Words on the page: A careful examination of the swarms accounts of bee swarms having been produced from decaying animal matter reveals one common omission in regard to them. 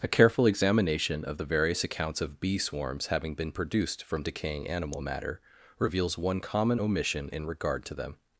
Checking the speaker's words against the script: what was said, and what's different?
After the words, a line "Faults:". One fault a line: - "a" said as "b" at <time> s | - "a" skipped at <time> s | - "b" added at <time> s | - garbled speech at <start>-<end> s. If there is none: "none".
A careful examination of the various accounts of bee swarms having been produced from decaying animal matter reveals one common omission in regard to them.
Faults:
- "swarms" said as "various" at 1.4 s